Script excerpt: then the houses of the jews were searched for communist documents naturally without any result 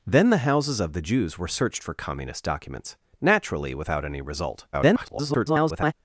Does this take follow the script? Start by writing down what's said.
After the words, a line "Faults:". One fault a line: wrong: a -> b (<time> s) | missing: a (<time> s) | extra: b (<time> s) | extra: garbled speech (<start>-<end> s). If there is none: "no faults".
then the houses of the jews were searched for communist documents naturally without any result [garbled]
Faults:
extra: garbled speech (4.7-5.9 s)